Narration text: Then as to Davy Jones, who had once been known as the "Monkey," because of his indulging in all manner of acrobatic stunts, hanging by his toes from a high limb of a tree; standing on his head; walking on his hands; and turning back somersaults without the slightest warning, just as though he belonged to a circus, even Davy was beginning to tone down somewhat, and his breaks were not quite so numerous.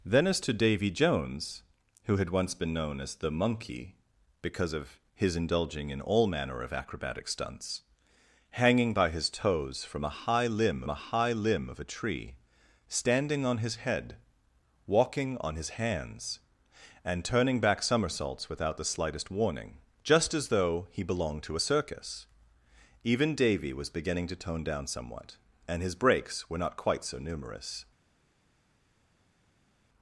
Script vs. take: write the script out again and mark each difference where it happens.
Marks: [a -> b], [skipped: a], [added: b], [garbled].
Then as to Davy Jones, who had once been known as the "Monkey," because of his indulging in all manner of acrobatic stunts, hanging by his toes from a high limb [added: a high limb] of a tree; standing on his head; walking on his hands; and turning back somersaults without the slightest warning, just as though he belonged to a circus, even Davy was beginning to tone down somewhat, and his breaks were not quite so numerous.